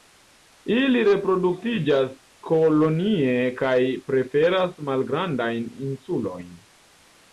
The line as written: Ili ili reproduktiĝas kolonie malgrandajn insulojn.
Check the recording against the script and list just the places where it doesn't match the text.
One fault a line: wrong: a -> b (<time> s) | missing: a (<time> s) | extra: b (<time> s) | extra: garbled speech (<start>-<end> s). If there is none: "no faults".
missing: ili (1.0 s)
extra: kaj preferas (3.6 s)